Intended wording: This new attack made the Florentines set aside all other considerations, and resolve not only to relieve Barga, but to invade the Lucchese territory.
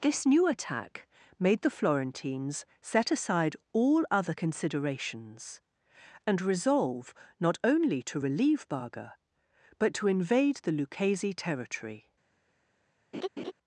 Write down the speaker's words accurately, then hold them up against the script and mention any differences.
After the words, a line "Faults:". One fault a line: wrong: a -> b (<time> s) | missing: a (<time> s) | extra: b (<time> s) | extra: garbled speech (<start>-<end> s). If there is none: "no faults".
This new attack made the Florentines set aside all other considerations, and resolve not only to relieve Barga, but to invade the Lucchese territory.
Faults:
no faults